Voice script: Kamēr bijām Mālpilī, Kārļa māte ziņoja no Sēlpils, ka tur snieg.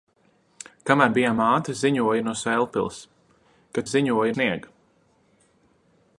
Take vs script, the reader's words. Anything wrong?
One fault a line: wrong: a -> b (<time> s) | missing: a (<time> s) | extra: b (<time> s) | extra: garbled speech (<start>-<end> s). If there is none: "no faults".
missing: Mālpilī Kārļa (1.4 s)
wrong: tur -> ziņoja (3.9 s)